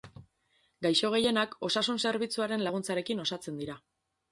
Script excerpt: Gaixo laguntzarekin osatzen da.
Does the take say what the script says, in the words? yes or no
no